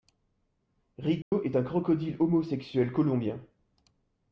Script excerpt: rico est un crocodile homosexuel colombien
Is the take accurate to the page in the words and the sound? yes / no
no